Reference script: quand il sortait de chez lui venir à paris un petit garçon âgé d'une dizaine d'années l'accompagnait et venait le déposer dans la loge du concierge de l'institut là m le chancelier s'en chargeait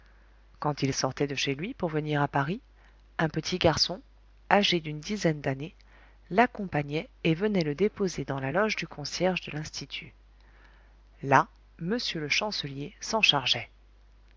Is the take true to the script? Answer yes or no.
no